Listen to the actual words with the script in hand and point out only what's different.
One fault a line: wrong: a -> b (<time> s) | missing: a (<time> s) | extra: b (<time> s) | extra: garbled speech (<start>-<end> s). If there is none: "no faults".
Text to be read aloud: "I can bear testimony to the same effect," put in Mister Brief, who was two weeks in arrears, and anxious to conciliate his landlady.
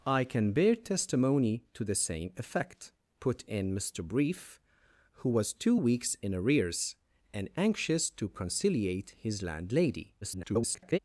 extra: garbled speech (10.2-11.0 s)